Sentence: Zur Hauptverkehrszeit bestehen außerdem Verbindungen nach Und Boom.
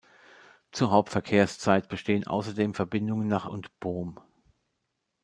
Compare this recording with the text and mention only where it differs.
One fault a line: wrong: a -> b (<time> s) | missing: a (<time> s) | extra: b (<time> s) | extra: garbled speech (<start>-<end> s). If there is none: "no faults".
no faults